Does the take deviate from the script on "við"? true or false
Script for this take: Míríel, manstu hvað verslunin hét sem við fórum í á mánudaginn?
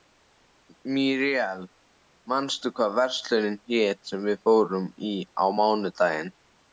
false